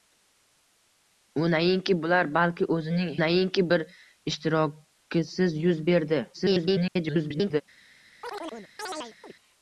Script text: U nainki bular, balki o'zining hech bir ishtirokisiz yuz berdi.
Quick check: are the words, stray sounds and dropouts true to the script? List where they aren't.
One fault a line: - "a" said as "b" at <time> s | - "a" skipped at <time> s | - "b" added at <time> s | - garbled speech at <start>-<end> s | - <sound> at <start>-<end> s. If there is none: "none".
- "hech" said as "nainki" at 3.2 s
- garbled speech at 6.3-7.6 s
- chirp at 8.2-9.3 s